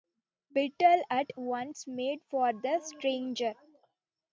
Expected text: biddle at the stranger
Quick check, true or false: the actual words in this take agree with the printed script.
false